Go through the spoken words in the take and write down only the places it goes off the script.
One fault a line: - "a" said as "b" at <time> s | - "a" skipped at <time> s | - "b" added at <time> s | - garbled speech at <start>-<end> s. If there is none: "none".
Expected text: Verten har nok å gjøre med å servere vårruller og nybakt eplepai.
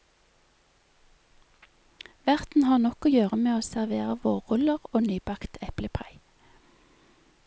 none